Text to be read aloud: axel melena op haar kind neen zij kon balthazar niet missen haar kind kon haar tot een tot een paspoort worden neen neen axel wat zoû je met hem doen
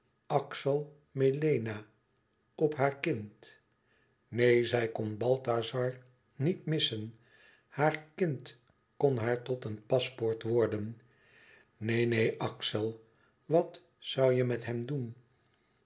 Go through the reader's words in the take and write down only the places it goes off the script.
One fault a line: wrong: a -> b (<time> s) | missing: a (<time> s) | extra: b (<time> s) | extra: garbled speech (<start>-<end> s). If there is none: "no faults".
missing: tot een (9.8 s)